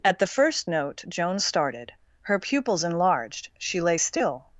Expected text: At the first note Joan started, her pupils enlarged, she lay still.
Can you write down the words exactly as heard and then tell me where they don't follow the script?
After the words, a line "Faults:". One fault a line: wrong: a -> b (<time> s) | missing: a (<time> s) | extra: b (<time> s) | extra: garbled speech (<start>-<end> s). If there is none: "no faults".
At the first note Joan started, her pupils enlarged, she lay still.
Faults:
no faults